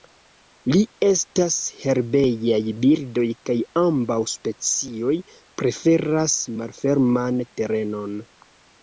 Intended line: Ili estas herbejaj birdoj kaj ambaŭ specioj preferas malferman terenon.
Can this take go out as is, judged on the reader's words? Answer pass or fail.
pass